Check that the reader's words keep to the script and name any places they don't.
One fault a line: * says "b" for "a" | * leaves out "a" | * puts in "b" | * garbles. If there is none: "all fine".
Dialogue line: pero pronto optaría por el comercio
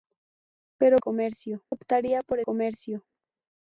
* says "comercio" for "pronto"
* leaves out "el"